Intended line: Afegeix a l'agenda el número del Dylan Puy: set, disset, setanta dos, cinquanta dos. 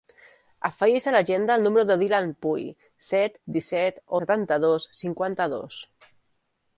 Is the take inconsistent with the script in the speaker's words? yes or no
no